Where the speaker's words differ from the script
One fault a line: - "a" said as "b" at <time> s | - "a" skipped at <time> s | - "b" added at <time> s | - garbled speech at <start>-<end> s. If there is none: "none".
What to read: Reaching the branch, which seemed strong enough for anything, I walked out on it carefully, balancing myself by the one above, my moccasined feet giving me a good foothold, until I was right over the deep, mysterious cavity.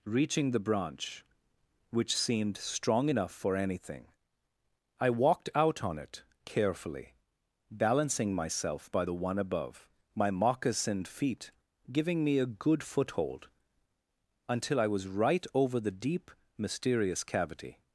none